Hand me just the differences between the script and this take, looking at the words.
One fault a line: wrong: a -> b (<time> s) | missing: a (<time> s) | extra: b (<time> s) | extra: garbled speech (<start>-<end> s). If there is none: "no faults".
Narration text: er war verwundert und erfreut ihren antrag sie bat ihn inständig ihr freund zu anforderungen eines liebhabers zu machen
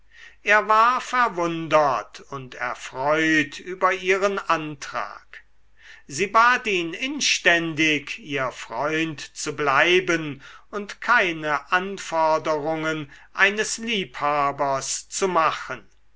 extra: über (3.6 s)
extra: bleiben und keine (9.6 s)